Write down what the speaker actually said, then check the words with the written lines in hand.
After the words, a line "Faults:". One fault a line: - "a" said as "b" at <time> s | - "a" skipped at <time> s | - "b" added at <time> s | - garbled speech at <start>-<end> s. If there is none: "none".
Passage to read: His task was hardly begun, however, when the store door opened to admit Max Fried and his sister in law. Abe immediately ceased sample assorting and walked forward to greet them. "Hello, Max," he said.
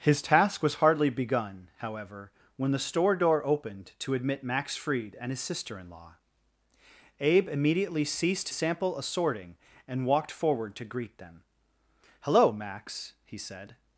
His task was hardly begun, however, when the store door opened to admit Max Fried and his sister in law. Abe immediately ceased sample assorting and walked forward to greet them. "Hello, Max," he said.
Faults:
none